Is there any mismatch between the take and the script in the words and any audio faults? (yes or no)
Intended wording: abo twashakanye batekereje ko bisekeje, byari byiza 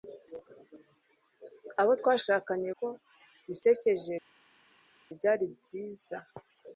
yes